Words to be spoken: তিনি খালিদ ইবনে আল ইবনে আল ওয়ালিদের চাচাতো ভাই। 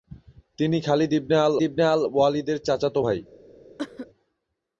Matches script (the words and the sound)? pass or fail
fail